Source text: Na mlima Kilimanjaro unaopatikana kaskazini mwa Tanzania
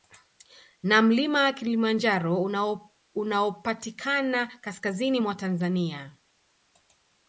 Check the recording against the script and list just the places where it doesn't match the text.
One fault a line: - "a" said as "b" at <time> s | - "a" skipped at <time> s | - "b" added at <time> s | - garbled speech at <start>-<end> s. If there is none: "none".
none